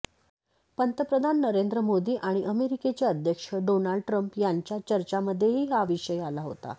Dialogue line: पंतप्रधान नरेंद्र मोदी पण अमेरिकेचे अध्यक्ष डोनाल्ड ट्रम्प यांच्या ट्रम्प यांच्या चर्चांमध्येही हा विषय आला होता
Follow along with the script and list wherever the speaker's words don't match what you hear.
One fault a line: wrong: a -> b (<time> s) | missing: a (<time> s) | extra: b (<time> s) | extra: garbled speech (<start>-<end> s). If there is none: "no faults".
wrong: पण -> आणि (2.2 s)
missing: ट्रम्प यांच्या (4.8 s)